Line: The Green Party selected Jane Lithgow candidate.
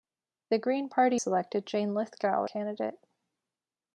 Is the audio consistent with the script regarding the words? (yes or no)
yes